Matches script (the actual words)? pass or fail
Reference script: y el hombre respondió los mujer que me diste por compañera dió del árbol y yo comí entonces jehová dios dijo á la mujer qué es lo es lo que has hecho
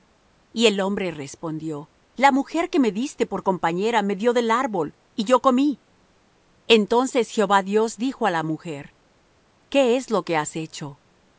fail